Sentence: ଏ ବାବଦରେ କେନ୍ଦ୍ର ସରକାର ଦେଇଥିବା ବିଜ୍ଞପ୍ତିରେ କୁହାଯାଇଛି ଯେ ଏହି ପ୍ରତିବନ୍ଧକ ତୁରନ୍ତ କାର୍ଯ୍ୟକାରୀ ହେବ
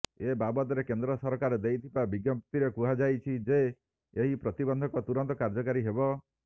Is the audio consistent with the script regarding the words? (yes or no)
yes